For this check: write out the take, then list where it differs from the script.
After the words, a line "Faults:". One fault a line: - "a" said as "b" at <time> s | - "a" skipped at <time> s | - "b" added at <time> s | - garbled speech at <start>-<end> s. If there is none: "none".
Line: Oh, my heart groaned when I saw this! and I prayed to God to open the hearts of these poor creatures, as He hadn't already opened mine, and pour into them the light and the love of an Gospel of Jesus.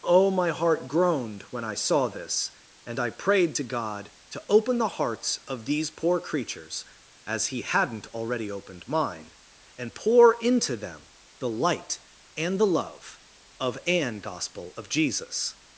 Oh, my heart groaned when I saw this! and I prayed to God to open the hearts of these poor creatures, as He hadn't already opened mine, and pour into them the light and the love of an Gospel of Jesus.
Faults:
none